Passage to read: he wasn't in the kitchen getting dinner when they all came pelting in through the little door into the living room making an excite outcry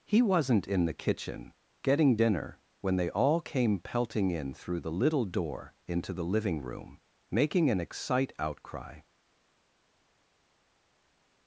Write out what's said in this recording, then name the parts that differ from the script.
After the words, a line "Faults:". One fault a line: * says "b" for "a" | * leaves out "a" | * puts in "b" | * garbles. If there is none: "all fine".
he wasn't in the kitchen getting dinner when they all came pelting in through the little door into the living room making an excite outcry
Faults:
all fine